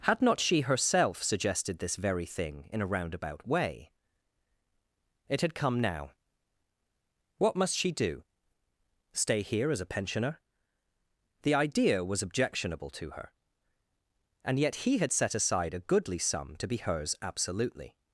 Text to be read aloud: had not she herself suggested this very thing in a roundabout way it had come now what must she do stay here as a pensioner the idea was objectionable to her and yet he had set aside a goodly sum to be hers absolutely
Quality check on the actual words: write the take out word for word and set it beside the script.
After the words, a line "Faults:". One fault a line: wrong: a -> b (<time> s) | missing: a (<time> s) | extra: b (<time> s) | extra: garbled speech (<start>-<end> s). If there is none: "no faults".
had not she herself suggested this very thing in a roundabout way it had come now what must she do stay here as a pensioner the idea was objectionable to her and yet he had set aside a goodly sum to be hers absolutely
Faults:
no faults